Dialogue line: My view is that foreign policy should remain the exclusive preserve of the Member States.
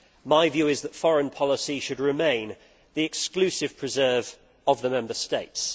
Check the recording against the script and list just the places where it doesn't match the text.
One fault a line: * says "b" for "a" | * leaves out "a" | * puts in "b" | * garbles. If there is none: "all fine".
all fine